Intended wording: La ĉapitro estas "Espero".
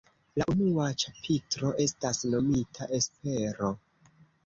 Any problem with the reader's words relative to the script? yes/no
yes